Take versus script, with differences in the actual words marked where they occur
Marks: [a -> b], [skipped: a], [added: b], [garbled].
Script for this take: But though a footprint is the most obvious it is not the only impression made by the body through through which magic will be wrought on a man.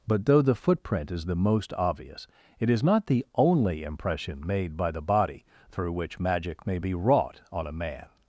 But though [a -> the] footprint is the most obvious it is not the only impression made by the body through [skipped: through] which magic [will -> may] be wrought on a man.